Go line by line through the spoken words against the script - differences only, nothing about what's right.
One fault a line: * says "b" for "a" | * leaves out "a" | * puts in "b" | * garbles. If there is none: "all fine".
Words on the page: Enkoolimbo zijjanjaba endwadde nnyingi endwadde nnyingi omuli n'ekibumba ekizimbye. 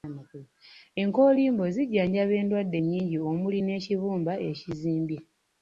* leaves out "endwadde nnyingi"